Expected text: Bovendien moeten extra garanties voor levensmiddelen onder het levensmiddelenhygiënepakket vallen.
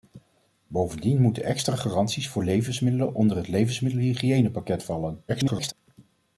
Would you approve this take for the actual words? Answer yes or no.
no